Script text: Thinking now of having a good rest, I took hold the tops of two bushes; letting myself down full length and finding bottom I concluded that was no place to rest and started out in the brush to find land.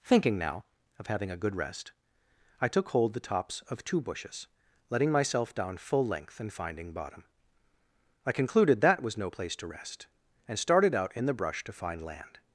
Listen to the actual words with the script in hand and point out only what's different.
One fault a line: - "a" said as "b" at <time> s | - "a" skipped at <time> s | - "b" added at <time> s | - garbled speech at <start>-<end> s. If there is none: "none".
none